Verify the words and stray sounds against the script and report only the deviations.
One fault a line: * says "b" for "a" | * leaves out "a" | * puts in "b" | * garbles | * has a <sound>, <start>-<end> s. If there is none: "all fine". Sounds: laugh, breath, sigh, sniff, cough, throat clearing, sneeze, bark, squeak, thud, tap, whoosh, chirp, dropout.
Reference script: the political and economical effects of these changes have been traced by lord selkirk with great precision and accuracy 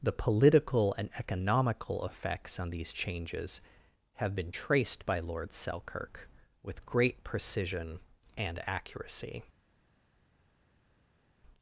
* says "on" for "of"